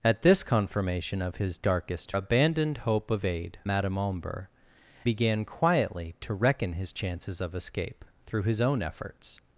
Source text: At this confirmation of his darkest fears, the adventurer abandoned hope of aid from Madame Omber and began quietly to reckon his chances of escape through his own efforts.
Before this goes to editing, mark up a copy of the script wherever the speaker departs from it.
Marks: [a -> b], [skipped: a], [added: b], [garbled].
At this confirmation of his darkest [skipped: fears, the adventurer] abandoned hope of aid [skipped: from] Madame Omber [skipped: and] began quietly to reckon his chances of escape through his own efforts.